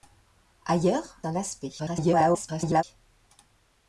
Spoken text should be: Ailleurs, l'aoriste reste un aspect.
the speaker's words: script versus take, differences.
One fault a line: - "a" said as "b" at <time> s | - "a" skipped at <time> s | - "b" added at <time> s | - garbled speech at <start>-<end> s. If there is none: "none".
- "l'aoriste reste" skipped at 1.2 s
- garbled speech at 1.8-2.8 s